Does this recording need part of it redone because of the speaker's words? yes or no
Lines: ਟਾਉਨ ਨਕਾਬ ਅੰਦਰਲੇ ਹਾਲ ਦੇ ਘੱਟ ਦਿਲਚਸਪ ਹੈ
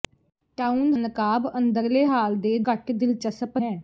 no